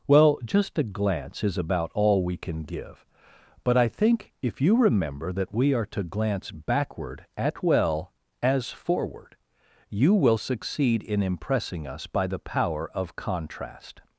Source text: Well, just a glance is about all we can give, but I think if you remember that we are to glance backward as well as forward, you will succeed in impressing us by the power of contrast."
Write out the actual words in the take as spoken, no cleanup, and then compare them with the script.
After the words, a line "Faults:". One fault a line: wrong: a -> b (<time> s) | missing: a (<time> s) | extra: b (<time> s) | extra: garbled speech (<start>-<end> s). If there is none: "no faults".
Well, just a glance is about all we can give, but I think if you remember that we are to glance backward at well as forward, you will succeed in impressing us by the power of contrast."
Faults:
wrong: as -> at (7.4 s)